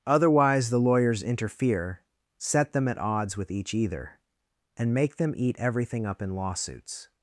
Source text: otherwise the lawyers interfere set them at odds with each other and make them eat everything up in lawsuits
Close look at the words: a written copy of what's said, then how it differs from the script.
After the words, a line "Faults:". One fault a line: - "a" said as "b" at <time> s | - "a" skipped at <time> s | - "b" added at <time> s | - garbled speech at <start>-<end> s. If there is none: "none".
otherwise the lawyers interfere set them at odds with each either and make them eat everything up in lawsuits
Faults:
- "other" said as "either" at 3.7 s